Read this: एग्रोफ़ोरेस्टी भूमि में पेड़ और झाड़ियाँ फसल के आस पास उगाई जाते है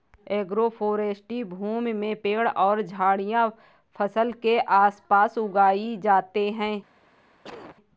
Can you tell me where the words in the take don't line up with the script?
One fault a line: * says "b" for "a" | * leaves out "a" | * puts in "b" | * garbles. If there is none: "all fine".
all fine